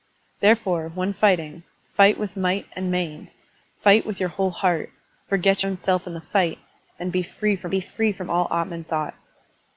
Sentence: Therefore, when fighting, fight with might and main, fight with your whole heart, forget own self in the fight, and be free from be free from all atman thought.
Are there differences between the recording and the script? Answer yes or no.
no